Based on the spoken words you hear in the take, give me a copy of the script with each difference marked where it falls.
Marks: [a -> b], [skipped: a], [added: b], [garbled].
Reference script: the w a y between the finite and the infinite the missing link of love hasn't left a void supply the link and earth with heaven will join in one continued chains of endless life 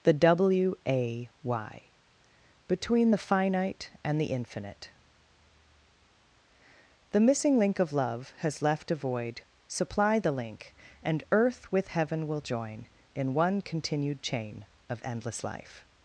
the w a y between the finite and the infinite the missing link of love [hasn't -> has] left a void supply the link and earth with heaven will join in one continued [chains -> chain] of endless life